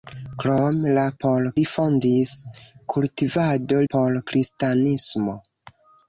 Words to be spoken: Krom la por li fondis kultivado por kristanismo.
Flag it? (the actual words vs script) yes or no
no